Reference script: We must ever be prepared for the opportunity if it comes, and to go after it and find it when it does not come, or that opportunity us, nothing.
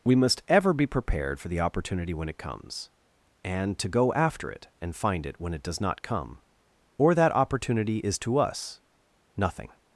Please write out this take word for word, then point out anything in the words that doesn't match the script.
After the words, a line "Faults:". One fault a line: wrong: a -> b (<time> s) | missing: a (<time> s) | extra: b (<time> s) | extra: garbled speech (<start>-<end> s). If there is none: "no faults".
We must ever be prepared for the opportunity when it comes, and to go after it and find it when it does not come, or that opportunity is to us, nothing.
Faults:
wrong: if -> when (2.1 s)
extra: is to (8.0 s)